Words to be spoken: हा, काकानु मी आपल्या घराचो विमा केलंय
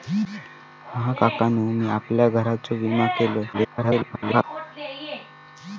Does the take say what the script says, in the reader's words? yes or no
no